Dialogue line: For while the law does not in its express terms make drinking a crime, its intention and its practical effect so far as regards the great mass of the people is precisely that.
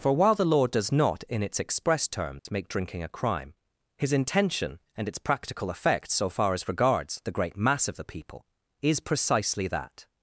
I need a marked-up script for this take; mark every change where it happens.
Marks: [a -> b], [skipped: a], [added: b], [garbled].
For while the law does not in its express terms make drinking a crime, [its -> his] intention and its practical effect so far as regards the great mass of the people is precisely that.